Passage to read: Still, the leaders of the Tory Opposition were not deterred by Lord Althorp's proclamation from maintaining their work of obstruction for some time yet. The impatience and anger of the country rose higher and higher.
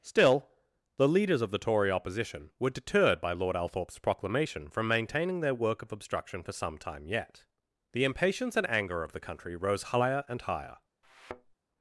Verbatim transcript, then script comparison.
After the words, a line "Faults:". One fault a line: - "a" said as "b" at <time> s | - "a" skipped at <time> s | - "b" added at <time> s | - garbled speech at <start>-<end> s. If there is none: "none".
Still, the leaders of the Tory Opposition were deterred by Lord Althorp's proclamation from maintaining their work of obstruction for some time yet. The impatience and anger of the country rose higher and higher.
Faults:
- "not" skipped at 2.7 s